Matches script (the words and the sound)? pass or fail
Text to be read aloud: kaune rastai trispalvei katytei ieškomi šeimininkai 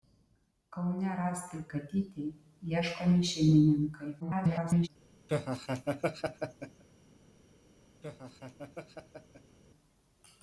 fail